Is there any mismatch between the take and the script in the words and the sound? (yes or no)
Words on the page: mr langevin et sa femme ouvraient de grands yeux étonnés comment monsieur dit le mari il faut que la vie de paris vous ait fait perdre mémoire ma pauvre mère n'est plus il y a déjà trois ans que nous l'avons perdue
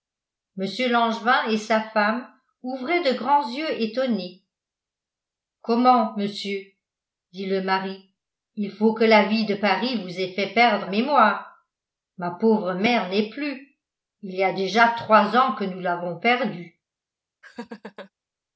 yes